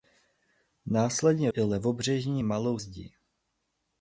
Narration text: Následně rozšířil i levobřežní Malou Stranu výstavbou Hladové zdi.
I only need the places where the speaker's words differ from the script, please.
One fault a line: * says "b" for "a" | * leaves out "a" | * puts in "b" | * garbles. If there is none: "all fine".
* leaves out "rozšířil"
* leaves out "Stranu výstavbou Hladové"